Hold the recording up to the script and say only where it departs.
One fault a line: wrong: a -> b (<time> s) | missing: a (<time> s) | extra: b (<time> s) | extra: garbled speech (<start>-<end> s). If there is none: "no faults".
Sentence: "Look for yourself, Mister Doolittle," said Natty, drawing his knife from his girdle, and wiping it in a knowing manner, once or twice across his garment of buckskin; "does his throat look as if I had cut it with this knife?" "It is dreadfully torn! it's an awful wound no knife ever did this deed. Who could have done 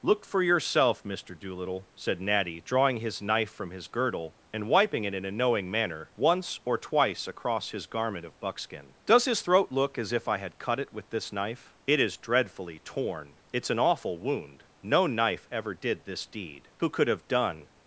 no faults